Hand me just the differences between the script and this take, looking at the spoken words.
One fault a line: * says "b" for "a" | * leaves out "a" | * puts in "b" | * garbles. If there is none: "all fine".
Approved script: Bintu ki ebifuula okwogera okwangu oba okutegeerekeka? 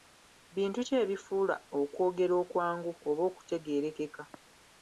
all fine